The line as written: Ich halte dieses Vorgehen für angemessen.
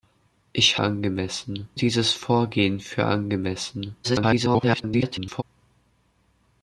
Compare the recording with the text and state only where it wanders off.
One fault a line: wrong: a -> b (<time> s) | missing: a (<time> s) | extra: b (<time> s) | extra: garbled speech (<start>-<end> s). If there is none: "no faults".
wrong: halte -> angemessen (0.8 s)
extra: garbled speech (4.0-5.4 s)